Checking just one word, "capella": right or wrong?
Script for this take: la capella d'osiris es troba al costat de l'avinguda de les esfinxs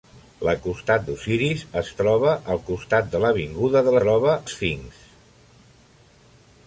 wrong